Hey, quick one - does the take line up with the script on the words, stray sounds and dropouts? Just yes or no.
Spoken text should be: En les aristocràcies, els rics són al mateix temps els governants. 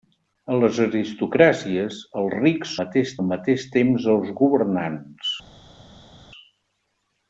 no